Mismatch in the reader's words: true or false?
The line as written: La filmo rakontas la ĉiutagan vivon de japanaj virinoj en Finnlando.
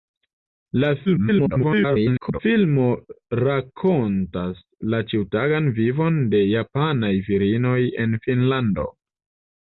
true